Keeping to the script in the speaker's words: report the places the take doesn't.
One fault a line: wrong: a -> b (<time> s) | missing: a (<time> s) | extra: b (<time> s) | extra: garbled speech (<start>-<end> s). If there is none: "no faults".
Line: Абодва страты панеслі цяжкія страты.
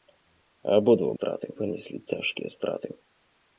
no faults